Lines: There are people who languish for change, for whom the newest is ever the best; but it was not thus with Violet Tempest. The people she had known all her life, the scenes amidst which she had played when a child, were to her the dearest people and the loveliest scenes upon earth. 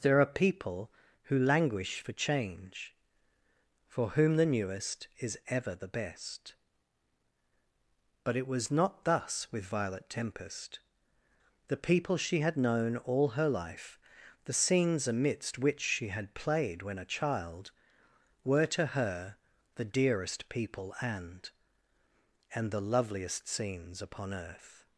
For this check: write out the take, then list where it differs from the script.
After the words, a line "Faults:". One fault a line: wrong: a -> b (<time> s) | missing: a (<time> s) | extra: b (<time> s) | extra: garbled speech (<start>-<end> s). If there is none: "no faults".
There are people who languish for change, for whom the newest is ever the best; but it was not thus with Violet Tempest. The people she had known all her life, the scenes amidst which she had played when a child, were to her the dearest people and and the loveliest scenes upon earth.
Faults:
extra: and (22.5 s)